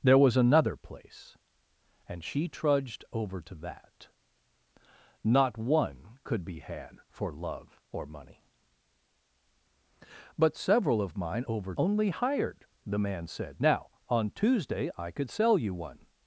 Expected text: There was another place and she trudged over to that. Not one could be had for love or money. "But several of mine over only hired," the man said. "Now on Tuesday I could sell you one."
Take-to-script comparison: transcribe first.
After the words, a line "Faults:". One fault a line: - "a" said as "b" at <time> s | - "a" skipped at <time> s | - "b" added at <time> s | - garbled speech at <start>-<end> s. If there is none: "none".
There was another place and she trudged over to that. Not one could be had for love or money. "But several of mine over only hired," the man said. "Now on Tuesday I could sell you one."
Faults:
none